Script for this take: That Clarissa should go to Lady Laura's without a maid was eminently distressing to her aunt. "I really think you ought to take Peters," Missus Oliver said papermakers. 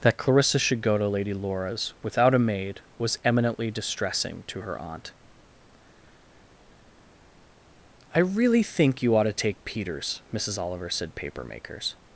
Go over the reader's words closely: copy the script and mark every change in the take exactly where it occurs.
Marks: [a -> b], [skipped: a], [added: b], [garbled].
That Clarissa should go to Lady Laura's without a maid was eminently distressing to her aunt. "I really think you ought to take Peters," Missus Oliver said papermakers.